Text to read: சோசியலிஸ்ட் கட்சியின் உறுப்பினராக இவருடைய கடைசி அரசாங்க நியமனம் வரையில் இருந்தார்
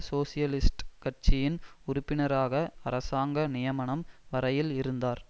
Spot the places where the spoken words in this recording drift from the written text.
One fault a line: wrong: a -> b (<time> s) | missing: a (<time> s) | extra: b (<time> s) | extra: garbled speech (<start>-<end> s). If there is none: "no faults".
missing: இவருடைய கடைசி (2.5 s)